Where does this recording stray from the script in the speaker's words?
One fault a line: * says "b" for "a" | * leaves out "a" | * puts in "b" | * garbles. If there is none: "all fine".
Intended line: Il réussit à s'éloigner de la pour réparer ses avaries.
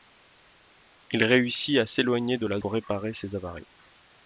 all fine